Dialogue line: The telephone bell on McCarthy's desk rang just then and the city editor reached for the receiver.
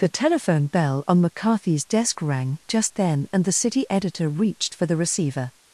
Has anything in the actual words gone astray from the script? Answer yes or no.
no